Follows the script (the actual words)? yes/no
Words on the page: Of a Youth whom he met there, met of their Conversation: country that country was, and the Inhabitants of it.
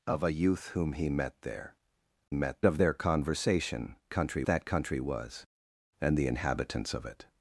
yes